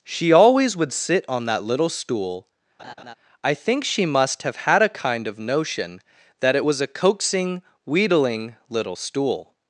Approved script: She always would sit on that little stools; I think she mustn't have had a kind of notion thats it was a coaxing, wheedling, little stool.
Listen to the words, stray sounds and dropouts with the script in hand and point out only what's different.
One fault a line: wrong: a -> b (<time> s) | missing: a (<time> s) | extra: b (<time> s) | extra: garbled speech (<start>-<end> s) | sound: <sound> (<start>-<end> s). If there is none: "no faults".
wrong: stools -> stool (1.9 s)
sound: laugh (2.8-3.1 s)
wrong: mustn't -> must (4.1 s)
wrong: thats -> that (6.4 s)